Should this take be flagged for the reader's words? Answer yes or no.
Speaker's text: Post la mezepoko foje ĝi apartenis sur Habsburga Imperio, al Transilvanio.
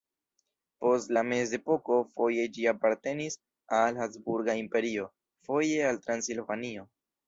yes